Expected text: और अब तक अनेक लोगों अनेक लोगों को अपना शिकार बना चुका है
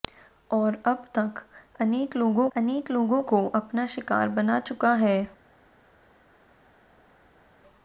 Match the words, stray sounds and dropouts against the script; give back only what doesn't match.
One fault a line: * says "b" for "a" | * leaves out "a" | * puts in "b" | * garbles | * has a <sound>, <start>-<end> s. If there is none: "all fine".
all fine